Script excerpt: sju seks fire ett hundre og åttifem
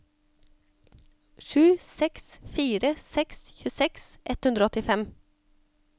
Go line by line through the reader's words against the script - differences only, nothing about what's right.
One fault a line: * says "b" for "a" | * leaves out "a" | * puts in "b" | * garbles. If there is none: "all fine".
* puts in "seks tjueseks"